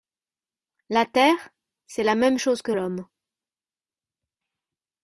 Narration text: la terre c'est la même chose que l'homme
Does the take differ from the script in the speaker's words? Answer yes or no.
no